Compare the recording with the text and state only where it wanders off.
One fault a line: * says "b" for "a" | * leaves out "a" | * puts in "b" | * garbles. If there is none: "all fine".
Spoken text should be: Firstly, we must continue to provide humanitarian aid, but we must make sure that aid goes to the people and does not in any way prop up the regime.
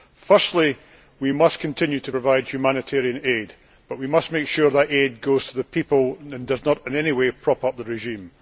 all fine